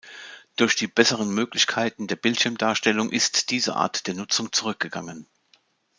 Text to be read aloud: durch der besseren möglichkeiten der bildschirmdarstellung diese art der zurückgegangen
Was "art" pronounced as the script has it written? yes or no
yes